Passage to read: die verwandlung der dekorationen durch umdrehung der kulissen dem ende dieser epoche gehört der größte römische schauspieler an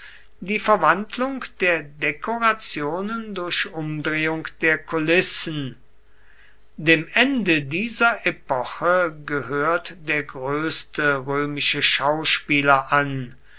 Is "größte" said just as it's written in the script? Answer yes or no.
yes